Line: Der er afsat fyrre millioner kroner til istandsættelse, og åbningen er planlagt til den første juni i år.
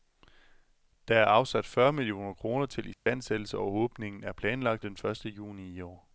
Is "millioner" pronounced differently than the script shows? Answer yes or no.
no